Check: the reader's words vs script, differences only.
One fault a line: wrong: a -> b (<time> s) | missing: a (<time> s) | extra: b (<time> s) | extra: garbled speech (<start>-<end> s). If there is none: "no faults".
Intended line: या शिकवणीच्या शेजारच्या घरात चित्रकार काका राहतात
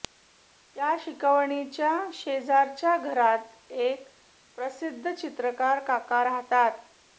extra: एक प्रसिद्ध (3.7 s)